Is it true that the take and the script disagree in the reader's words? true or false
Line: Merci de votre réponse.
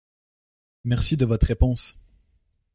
false